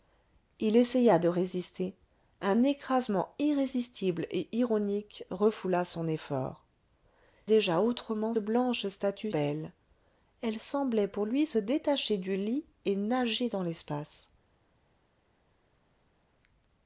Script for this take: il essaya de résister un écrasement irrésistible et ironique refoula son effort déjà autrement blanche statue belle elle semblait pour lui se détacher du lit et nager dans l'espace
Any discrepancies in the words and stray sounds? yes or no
no